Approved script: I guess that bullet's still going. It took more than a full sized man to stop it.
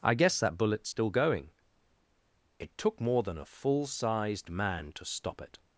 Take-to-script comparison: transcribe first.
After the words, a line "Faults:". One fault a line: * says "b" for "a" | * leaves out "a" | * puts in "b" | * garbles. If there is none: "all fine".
I guess that bullet's still going. It took more than a full sized man to stop it.
Faults:
all fine